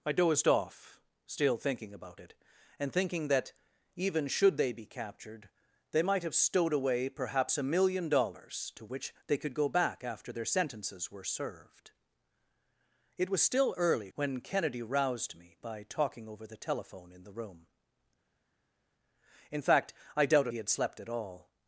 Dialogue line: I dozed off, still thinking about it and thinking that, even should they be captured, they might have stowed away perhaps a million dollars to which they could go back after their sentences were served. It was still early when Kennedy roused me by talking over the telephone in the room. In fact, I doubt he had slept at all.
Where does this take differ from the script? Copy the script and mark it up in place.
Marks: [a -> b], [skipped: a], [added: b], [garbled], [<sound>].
I dozed off, still thinking about it and thinking that, even should they be captured, they might have stowed away perhaps a million dollars to which they could go back after their sentences were served. It was still early when Kennedy roused me by talking over the telephone in the room. In fact, I doubt he had slept at all.